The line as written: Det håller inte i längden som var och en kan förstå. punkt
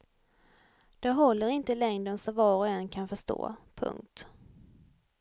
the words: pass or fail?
pass